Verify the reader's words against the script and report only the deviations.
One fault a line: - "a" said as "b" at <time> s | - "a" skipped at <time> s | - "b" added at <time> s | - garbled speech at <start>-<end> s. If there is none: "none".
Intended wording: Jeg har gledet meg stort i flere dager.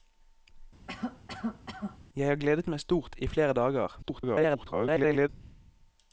- garbled speech at 4.0-5.3 s